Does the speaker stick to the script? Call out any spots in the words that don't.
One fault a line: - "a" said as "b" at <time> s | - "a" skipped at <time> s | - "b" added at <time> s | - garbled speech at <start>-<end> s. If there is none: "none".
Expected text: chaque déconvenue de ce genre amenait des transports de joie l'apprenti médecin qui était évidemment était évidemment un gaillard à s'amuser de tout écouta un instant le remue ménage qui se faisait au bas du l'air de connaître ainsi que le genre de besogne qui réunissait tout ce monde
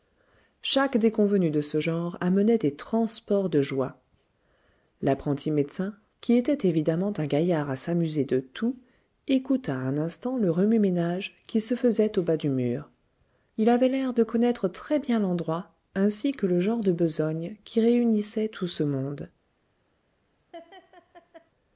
- "était évidemment" skipped at 7.1 s
- "mur il avait" added at 12.5 s
- "très bien l'endroit" added at 14.7 s